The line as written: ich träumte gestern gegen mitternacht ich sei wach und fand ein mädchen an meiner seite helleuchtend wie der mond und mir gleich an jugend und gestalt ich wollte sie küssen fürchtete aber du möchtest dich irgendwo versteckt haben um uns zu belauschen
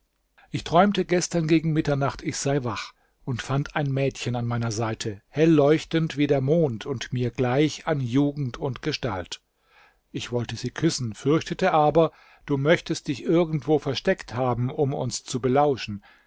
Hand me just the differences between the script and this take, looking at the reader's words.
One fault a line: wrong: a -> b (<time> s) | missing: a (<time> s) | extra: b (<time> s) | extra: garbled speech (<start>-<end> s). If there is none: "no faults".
no faults